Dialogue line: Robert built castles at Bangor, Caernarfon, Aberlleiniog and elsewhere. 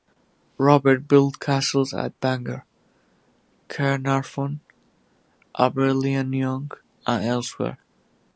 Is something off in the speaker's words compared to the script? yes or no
no